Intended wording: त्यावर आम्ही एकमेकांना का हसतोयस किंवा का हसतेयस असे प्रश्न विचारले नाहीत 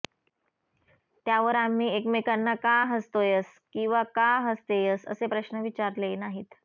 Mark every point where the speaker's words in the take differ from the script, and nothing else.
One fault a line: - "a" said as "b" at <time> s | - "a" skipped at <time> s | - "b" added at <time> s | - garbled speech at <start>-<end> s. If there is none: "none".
none